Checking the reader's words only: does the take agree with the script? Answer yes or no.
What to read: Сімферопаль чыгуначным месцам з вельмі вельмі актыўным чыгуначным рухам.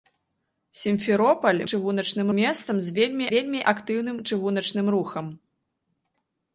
yes